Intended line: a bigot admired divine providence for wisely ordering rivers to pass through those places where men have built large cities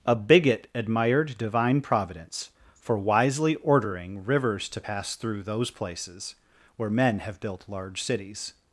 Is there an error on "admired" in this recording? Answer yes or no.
no